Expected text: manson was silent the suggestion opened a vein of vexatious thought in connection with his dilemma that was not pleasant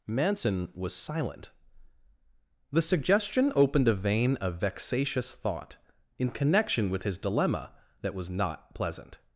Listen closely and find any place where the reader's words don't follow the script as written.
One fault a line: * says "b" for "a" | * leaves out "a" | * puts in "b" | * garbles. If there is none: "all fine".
all fine